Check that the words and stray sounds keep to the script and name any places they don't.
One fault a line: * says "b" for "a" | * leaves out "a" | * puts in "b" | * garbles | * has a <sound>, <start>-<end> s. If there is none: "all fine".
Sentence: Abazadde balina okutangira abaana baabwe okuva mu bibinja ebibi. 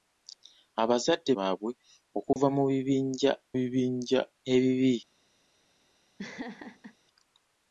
* leaves out "balina okutangira abaana"
* has a dropout, 2.3-2.4 s
* puts in "bibinja"
* has a laugh, 6.2-7.0 s